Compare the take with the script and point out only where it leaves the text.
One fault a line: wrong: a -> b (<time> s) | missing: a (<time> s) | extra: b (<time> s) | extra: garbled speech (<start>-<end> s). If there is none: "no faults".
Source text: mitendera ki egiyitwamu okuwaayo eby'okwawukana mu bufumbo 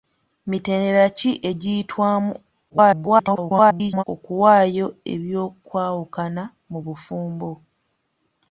extra: garbled speech (2.7-4.0 s)